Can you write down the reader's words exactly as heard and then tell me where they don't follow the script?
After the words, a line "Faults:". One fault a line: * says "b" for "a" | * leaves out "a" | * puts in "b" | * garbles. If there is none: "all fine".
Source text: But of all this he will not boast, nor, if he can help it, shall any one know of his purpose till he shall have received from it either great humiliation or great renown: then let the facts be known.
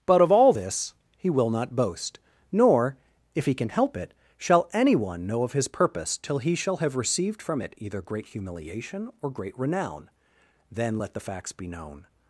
But of all this he will not boast, nor, if he can help it, shall any one know of his purpose till he shall have received from it either great humiliation or great renown: then let the facts be known.
Faults:
all fine